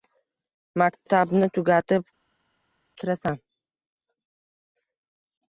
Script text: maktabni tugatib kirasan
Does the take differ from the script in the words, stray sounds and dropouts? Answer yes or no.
no